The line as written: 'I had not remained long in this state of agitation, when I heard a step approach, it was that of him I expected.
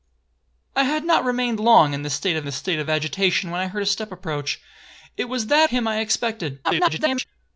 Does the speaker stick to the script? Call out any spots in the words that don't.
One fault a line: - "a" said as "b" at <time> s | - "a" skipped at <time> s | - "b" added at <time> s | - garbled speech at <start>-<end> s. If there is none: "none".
- "this state of" added at 2.4 s
- "of" skipped at 5.7 s
- garbled speech at 6.6-7.3 s